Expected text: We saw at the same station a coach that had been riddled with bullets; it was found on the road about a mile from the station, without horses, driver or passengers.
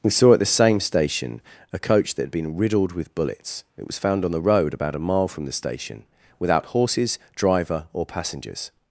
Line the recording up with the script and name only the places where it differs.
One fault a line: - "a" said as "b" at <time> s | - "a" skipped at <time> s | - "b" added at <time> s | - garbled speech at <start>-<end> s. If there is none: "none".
none